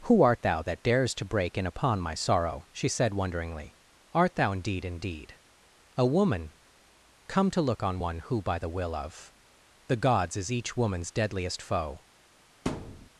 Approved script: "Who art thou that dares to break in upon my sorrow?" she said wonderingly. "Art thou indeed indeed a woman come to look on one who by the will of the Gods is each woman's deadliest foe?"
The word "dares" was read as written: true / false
true